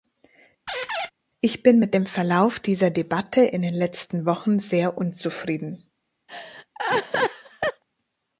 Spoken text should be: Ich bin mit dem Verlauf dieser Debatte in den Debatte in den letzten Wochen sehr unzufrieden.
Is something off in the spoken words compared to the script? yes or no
yes